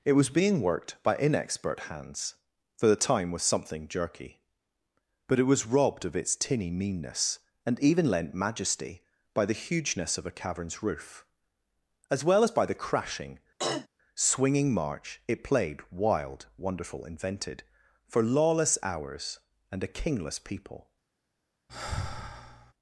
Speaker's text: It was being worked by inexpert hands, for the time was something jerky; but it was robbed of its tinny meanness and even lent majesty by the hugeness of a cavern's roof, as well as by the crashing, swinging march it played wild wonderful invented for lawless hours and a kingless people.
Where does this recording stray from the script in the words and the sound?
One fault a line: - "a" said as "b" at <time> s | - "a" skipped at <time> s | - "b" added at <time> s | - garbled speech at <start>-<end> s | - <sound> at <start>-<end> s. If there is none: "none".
- throat clearing at 13.6-13.9 s
- sigh at 21.7-22.7 s